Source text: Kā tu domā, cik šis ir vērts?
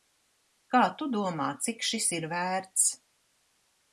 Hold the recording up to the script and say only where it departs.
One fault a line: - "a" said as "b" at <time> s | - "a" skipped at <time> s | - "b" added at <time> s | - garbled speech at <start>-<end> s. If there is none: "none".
none